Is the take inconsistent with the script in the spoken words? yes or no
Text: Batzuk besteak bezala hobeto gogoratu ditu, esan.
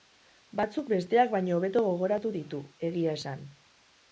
yes